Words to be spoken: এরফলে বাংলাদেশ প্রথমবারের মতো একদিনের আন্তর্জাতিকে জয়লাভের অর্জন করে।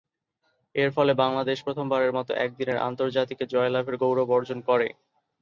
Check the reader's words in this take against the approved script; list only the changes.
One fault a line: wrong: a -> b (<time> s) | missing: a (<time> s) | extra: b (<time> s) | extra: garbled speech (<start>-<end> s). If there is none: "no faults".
extra: গৌরব (4.0 s)